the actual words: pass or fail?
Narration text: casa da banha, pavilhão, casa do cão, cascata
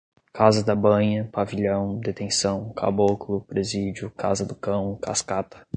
fail